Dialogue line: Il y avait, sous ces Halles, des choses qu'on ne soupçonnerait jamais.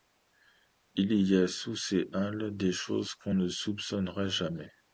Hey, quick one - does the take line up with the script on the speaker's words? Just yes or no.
no